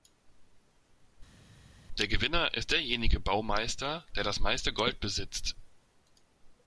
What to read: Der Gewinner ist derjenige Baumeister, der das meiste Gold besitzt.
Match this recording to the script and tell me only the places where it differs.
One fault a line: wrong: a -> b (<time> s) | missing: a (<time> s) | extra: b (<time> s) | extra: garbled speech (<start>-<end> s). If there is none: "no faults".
no faults